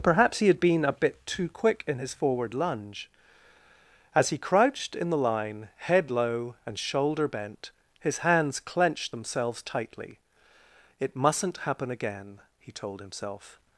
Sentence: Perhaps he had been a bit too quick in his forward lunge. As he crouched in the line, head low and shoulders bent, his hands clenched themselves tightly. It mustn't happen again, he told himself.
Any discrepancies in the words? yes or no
yes